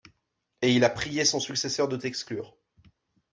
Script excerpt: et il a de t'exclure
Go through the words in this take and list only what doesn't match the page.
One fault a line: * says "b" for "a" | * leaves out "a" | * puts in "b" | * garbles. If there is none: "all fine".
* puts in "prié son successeur"